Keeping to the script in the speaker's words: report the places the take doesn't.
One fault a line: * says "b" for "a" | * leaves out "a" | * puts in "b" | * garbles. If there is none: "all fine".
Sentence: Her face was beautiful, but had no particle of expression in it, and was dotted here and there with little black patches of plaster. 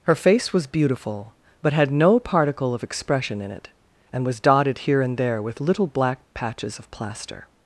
all fine